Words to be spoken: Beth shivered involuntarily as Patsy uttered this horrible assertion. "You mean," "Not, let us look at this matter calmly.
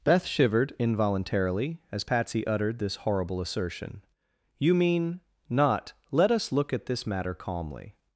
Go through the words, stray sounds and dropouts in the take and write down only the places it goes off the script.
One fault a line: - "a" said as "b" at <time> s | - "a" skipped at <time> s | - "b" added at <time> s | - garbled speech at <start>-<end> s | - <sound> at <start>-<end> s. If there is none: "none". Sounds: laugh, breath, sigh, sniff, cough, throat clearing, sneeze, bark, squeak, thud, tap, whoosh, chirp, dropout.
none